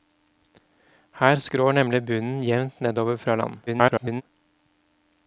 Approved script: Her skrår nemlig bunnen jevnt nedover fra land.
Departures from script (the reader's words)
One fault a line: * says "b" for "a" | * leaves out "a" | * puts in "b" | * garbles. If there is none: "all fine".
* garbles